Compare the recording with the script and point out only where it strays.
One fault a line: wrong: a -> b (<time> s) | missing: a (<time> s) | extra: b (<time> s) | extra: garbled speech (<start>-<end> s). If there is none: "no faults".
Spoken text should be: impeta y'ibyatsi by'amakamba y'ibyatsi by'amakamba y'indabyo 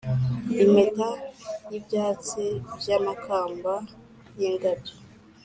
missing: y'ibyatsi by'amakamba (3.7 s)